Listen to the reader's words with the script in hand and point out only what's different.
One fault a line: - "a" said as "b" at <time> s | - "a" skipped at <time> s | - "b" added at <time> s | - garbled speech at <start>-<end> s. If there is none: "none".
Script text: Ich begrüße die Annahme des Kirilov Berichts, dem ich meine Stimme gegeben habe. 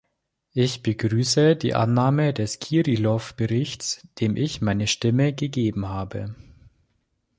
none